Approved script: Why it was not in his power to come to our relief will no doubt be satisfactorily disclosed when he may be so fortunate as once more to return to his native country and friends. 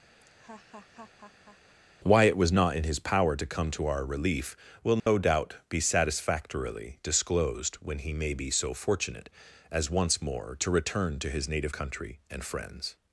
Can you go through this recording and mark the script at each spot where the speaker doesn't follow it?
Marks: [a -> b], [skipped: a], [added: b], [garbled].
Why it was not in his power to come to our relief will no doubt be satisfactorily disclosed when he may be so fortunate as once more to return to his native country and friends.